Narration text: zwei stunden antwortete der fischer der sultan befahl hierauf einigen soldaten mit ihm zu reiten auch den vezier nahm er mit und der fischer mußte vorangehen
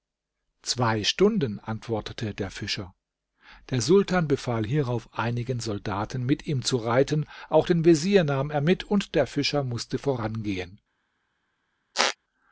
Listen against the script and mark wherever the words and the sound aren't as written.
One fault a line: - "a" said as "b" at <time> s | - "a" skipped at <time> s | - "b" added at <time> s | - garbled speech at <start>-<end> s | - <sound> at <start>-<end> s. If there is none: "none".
- squeak at 11.9-12.2 s